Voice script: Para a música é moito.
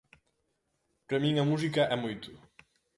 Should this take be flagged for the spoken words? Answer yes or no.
yes